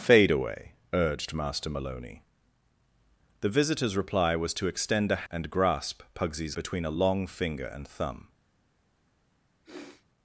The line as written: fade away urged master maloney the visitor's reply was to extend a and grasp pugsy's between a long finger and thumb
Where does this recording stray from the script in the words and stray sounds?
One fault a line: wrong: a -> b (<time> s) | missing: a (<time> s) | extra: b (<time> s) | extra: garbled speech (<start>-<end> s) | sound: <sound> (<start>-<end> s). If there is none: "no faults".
sound: sniff (9.6-10.1 s)